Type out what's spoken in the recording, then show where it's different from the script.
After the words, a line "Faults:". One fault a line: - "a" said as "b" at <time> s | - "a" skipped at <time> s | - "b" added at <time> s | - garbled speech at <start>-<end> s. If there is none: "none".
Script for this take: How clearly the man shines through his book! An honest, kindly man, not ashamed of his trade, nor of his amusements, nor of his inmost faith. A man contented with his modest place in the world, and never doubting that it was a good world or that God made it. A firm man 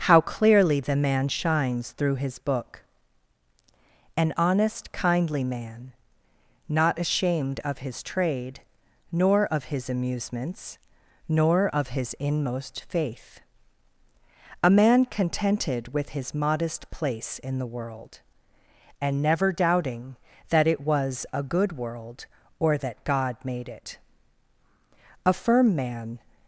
How clearly the man shines through his book! An honest, kindly man, not ashamed of his trade, nor of his amusements, nor of his inmost faith. A man contented with his modest place in the world, and never doubting that it was a good world or that God made it. A firm man
Faults:
none